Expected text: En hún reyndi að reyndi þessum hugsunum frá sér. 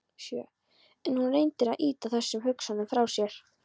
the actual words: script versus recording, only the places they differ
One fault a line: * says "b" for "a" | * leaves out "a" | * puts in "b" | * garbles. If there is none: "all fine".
* says "ýta" for "reyndi"